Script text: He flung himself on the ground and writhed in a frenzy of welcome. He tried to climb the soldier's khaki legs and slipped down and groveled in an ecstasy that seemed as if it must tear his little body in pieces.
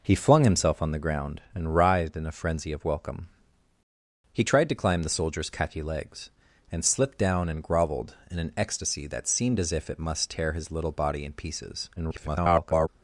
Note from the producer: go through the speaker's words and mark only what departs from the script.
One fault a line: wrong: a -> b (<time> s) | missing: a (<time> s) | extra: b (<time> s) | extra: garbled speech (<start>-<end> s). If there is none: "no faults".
extra: garbled speech (12.0-12.9 s)